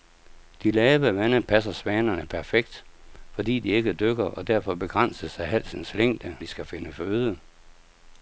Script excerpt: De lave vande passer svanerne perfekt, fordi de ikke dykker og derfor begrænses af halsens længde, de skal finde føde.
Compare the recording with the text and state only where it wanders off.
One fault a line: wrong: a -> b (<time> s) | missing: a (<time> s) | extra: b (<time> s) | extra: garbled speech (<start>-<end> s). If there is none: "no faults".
no faults